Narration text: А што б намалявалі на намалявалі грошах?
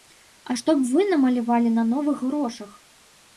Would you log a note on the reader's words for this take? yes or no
yes